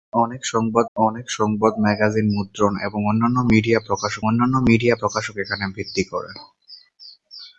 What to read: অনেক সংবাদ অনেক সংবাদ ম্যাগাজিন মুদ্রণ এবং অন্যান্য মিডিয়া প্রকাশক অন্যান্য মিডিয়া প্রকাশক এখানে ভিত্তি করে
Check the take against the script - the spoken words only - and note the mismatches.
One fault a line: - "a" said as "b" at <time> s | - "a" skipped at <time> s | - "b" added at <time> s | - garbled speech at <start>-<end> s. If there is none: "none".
none